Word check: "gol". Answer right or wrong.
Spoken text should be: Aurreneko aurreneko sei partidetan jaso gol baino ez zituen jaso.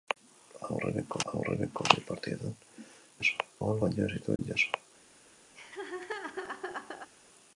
right